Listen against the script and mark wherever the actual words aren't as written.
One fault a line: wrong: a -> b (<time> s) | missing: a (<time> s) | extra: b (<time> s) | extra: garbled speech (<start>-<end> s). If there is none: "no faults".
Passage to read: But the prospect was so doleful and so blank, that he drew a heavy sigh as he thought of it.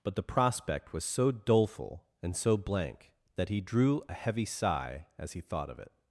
no faults